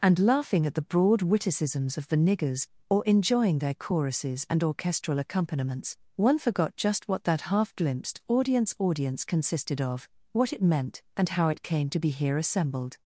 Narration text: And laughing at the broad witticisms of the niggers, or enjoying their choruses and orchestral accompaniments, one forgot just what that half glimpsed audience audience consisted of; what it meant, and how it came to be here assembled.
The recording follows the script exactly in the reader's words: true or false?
true